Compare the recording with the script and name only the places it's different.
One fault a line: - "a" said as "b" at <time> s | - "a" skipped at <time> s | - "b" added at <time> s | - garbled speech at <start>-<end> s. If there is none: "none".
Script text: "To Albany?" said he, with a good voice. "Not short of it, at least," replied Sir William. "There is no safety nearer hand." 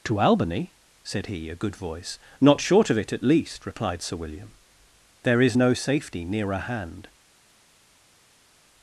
- "with" skipped at 1.5 s